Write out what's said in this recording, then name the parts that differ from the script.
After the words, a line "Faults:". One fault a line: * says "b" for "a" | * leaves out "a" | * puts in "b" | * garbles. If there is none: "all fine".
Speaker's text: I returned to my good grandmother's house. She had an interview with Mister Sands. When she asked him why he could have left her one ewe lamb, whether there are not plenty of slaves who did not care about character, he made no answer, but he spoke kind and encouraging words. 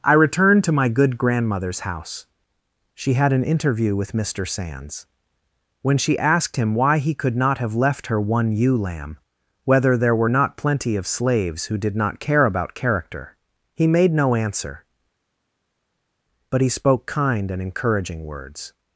I returned to my good grandmother's house. She had an interview with Mister Sands. When she asked him why he could not have left her one ewe lamb, whether there were not plenty of slaves who did not care about character, he made no answer, but he spoke kind and encouraging words.
Faults:
* puts in "not"
* says "were" for "are"